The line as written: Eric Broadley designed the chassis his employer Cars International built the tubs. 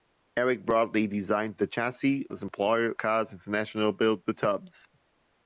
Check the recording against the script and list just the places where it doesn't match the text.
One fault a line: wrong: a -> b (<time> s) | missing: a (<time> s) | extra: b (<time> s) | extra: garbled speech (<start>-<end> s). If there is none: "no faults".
no faults